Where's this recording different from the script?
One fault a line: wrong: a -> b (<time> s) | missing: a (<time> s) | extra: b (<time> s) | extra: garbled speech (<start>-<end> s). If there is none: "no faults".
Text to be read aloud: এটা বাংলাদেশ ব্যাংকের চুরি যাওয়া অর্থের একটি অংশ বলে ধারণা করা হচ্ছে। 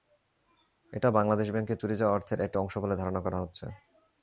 no faults